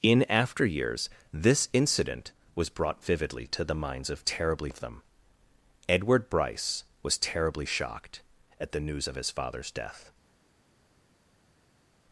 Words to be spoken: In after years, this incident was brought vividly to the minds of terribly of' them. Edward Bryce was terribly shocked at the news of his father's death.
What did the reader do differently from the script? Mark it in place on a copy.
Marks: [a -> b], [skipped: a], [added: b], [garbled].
In after years, this incident was brought vividly to the minds of terribly of' them. Edward Bryce was terribly shocked at the news of his father's death.